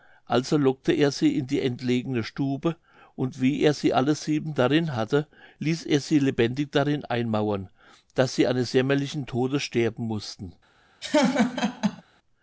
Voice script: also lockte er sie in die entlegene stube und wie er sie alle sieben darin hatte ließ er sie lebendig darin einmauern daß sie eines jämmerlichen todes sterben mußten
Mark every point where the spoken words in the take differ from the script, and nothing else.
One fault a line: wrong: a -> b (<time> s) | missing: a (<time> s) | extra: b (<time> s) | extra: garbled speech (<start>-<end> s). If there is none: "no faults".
no faults